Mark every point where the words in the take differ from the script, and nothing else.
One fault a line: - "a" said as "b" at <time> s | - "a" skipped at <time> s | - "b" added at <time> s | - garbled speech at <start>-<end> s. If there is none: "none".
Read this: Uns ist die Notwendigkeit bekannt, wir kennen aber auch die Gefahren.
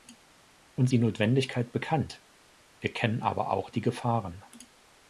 - "ist" skipped at 0.9 s